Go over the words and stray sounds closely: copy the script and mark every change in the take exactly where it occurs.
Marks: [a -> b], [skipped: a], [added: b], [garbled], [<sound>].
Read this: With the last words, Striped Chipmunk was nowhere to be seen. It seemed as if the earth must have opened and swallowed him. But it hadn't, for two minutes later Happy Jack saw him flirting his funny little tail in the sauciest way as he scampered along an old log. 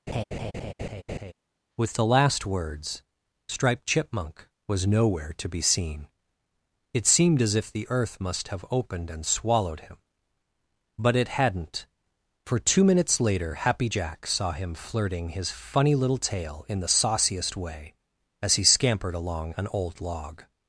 [laugh] With the last words, Striped Chipmunk was nowhere to be seen. It seemed as if the earth must have opened and swallowed him. But it hadn't, for two minutes later Happy Jack saw him flirting his funny little tail in the sauciest way as he scampered along an old log.